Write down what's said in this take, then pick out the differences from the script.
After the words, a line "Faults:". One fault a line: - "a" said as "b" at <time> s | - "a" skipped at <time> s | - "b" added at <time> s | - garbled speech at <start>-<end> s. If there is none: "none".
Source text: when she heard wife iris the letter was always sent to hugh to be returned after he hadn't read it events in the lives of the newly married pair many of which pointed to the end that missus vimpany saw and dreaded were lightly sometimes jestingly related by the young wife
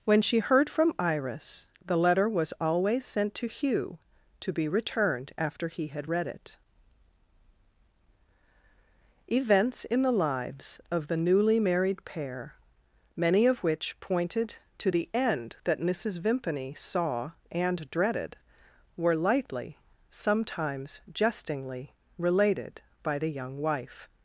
when she heard from iris the letter was always sent to hugh to be returned after he had read it events in the lives of the newly married pair many of which pointed to the end that missus vimpany saw and dreaded were lightly sometimes jestingly related by the young wife
Faults:
- "wife" said as "from" at 0.7 s
- "hadn't" said as "had" at 5.9 s